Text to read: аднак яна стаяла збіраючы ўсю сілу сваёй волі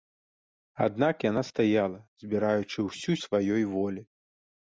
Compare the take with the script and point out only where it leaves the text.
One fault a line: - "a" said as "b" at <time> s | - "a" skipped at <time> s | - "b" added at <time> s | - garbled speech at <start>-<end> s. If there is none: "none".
- "сілу" skipped at 3.2 s